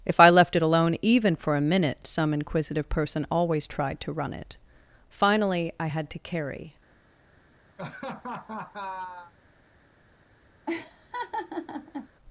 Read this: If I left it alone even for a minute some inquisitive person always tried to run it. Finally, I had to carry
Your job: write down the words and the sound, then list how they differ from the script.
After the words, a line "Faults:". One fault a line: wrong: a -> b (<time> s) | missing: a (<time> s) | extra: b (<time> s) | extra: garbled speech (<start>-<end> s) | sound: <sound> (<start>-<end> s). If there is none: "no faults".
If I left it alone even for a minute some inquisitive person always tried to run it. Finally, I had to carry
Faults:
sound: laugh (7.8-9.3 s)
sound: laugh (10.7-12.1 s)